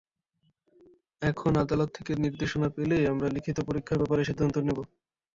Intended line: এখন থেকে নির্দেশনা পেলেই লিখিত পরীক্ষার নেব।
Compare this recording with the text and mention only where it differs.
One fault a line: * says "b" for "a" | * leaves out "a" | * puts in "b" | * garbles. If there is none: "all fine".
* puts in "আদালত"
* puts in "আমরা"
* puts in "ব্যাপারে সিদ্ধান্ত"